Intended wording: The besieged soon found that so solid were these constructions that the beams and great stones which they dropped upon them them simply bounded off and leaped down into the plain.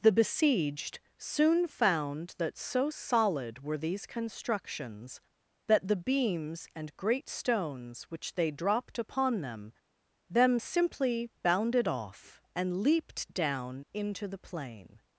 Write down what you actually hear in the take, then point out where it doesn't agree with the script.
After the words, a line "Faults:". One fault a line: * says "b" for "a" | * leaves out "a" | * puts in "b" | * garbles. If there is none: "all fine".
The besieged soon found that so solid were these constructions that the beams and great stones which they dropped upon them them simply bounded off and leaped down into the plain.
Faults:
all fine